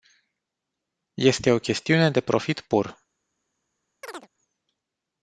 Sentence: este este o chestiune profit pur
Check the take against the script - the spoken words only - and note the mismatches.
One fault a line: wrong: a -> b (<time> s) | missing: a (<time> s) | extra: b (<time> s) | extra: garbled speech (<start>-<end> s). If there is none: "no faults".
missing: este (1.5 s)
extra: de (2.1 s)